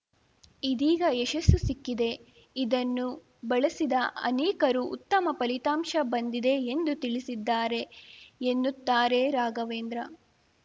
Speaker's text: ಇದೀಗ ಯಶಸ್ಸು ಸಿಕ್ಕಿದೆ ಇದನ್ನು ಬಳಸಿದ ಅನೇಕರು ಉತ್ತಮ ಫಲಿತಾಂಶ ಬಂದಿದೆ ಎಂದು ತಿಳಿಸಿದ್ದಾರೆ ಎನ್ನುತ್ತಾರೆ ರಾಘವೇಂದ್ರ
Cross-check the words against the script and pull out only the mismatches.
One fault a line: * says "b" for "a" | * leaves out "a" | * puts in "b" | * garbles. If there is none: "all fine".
all fine